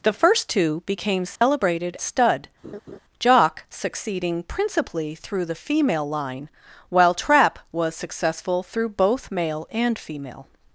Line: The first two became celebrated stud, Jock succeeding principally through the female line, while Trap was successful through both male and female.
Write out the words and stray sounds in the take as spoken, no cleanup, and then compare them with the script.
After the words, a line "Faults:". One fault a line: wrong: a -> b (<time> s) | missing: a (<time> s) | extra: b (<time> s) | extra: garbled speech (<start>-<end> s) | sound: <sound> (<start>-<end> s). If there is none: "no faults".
The first two became celebrated stud, Jock succeeding principally through the female line, while Trap was successful through both male and female.
Faults:
sound: dropout (1.4-1.4 s)
sound: laugh (2.6-3.0 s)